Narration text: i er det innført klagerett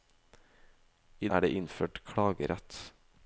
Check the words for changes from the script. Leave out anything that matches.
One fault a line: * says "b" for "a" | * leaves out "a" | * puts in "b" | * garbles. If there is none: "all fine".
all fine